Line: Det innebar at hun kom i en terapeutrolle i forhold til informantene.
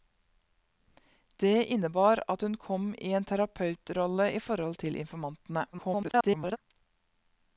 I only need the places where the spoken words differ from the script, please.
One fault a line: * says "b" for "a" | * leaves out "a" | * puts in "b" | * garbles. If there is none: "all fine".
* garbles